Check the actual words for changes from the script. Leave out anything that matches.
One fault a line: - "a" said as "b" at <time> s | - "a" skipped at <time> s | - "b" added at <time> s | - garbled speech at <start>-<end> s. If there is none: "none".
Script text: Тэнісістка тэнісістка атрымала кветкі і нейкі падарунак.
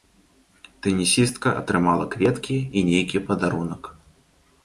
- "тэнісістка" skipped at 1.5 s